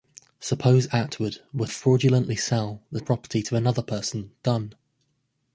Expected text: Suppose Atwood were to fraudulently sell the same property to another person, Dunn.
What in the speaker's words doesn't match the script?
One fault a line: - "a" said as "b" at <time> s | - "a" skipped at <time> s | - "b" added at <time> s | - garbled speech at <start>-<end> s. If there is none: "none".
- "to" skipped at 1.7 s
- "same" skipped at 3.0 s